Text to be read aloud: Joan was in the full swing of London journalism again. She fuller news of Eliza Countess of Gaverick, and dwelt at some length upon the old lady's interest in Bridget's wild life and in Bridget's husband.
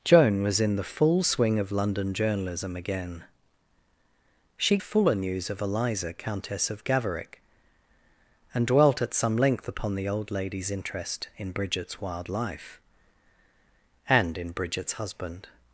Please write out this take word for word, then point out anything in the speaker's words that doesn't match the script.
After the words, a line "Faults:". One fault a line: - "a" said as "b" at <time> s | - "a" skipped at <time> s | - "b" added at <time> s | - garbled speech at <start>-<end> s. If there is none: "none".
Joan was in the full swing of London journalism again. She fuller news of Eliza Countess of Gaverick, and dwelt at some length upon the old lady's interest in Bridget's wild life and in Bridget's husband.
Faults:
none